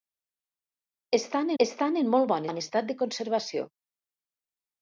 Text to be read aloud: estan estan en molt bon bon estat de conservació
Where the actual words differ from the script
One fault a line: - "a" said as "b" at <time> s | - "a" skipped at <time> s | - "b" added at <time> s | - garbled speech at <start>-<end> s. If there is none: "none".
none